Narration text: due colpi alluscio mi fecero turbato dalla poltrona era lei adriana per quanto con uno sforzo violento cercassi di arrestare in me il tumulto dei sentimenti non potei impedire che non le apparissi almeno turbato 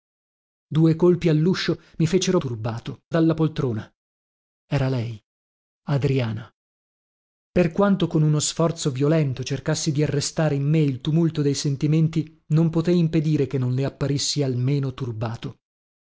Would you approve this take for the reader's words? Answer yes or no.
yes